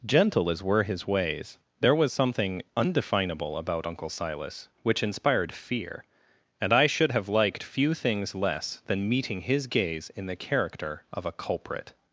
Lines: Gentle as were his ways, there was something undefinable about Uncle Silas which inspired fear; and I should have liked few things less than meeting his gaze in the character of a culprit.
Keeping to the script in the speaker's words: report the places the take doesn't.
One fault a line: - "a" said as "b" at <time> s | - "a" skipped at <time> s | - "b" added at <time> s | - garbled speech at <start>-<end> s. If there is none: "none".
none